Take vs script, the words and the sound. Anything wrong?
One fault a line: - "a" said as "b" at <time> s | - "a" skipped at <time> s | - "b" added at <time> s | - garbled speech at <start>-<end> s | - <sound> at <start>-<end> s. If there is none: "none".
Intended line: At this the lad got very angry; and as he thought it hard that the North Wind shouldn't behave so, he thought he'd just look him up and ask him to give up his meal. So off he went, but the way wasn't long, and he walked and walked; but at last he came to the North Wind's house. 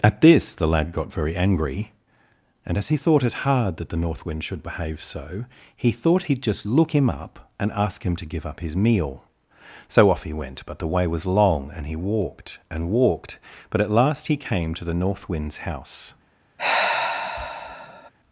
- "shouldn't" said as "should" at 4.4 s
- "wasn't" said as "was" at 11.1 s
- sigh at 16.6-18.1 s